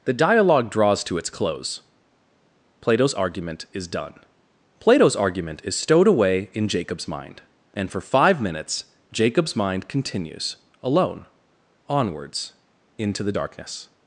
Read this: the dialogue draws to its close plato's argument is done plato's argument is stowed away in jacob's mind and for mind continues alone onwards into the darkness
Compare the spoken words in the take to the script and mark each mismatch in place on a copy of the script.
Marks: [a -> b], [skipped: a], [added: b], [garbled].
the dialogue draws to its close plato's argument is done plato's argument is stowed away in jacob's mind and for [added: five minutes jacob's] mind continues alone onwards into the darkness